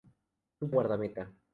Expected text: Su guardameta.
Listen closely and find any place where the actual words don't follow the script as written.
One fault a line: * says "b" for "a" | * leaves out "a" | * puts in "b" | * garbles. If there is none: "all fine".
all fine